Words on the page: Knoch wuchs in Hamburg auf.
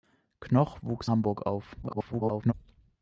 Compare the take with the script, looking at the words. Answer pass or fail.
fail